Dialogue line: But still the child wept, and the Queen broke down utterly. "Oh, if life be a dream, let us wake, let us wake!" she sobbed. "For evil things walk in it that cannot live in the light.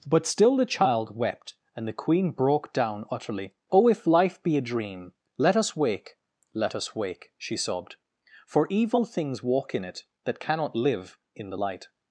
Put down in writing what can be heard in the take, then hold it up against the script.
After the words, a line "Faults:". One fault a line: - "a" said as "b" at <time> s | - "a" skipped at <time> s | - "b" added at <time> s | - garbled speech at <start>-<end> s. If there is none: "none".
But still the child wept, and the Queen broke down utterly. "Oh, if life be a dream, let us wake, let us wake!" she sobbed. "For evil things walk in it that cannot live in the light.
Faults:
none